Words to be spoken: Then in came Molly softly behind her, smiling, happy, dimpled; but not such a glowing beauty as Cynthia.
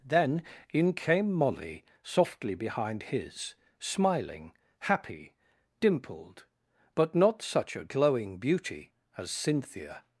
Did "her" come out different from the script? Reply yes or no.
yes